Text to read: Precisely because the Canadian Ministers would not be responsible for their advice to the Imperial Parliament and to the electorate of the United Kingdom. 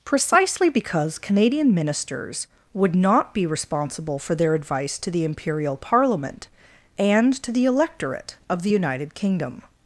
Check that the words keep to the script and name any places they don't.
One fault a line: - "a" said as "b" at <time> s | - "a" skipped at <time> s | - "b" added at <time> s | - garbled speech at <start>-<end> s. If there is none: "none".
- "the" skipped at 1.2 s